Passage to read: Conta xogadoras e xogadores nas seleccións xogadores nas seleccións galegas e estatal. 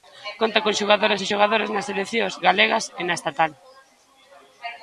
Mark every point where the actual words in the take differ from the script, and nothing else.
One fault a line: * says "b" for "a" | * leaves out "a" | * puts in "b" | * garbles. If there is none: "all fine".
* puts in "con"
* leaves out "xogadores nas seleccións"
* puts in "na"